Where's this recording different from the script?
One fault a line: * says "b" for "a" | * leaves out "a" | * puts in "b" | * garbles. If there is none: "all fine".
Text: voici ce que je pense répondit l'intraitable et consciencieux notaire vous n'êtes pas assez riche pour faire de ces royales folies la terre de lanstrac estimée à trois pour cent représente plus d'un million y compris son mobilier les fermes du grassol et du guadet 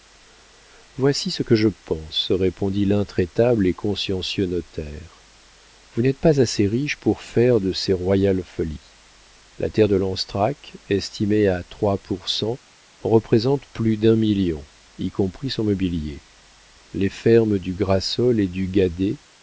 all fine